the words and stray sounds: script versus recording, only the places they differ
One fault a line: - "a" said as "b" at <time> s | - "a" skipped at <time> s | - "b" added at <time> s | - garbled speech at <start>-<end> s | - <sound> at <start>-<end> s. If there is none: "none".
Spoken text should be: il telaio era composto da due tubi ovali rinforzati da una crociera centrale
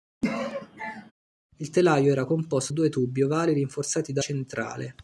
- sneeze at 0.2-1.1 s
- "da" skipped at 2.7 s
- "una crociera" skipped at 4.2 s